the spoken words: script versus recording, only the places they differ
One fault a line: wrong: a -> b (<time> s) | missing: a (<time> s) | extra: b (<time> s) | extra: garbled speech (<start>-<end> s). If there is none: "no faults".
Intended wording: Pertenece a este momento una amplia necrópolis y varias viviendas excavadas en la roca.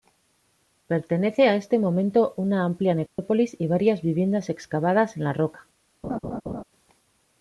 no faults